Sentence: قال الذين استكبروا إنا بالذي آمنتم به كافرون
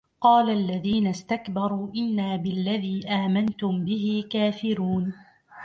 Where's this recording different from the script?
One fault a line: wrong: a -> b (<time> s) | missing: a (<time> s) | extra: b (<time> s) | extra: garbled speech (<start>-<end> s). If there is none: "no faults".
no faults